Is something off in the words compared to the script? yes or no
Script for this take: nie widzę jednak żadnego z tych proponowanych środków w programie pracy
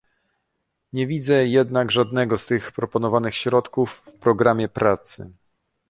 no